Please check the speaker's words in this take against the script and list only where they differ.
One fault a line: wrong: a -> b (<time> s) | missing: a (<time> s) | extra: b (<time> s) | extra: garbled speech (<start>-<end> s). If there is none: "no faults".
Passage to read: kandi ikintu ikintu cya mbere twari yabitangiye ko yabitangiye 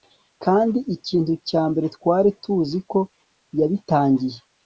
missing: ikintu (1.3 s)
wrong: yabitangiye -> tuzi (2.4 s)